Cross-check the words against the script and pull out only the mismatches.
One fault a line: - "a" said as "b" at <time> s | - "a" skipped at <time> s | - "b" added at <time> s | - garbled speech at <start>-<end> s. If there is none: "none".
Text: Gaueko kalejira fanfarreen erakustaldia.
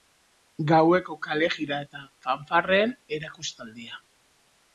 - "eta" added at 1.9 s